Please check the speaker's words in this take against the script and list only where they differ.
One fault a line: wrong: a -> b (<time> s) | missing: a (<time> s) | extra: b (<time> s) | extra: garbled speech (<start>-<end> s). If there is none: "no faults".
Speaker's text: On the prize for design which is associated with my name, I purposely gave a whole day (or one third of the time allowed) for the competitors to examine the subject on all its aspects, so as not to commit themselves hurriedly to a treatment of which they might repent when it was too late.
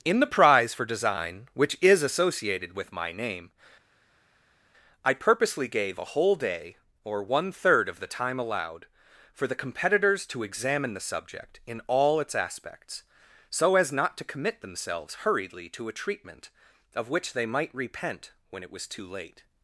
wrong: On -> In (0.0 s)
wrong: on -> in (11.7 s)